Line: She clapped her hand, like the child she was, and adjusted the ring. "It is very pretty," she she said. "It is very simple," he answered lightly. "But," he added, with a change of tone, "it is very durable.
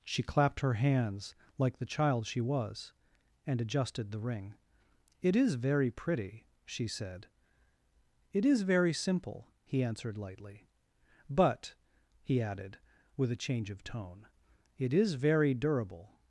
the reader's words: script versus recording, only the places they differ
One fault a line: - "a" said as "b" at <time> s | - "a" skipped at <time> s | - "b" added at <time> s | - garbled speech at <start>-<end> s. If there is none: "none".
- "hand" said as "hands" at 0.7 s
- "she" skipped at 6.9 s